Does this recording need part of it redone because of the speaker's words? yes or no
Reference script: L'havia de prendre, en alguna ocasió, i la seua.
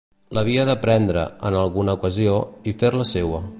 yes